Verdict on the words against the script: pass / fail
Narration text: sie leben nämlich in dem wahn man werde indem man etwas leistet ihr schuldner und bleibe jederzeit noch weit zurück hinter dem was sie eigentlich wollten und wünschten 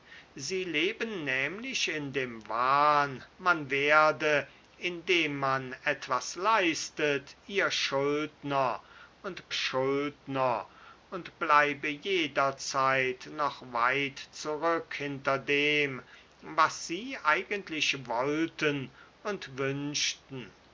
fail